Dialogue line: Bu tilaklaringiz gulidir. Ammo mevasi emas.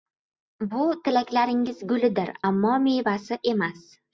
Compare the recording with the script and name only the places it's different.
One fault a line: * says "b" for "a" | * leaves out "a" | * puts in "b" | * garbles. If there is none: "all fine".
all fine